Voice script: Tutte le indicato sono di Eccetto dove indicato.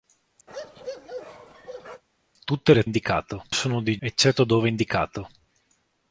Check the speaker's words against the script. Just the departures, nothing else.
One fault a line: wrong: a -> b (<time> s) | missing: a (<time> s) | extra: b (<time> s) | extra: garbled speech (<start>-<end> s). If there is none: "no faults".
no faults